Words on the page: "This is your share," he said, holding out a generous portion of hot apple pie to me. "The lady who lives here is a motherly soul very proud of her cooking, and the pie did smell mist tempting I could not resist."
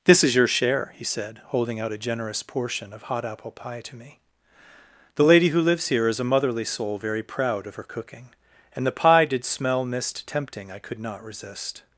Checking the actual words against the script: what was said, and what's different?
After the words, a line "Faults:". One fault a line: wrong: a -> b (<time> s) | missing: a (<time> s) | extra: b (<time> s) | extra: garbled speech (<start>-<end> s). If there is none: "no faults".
"This is your share," he said, holding out a generous portion of hot apple pie to me. "The lady who lives here is a motherly soul very proud of her cooking, and the pie did smell mist tempting I could not resist."
Faults:
no faults